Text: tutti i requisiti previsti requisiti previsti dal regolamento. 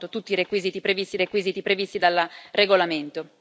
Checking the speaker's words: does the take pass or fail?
pass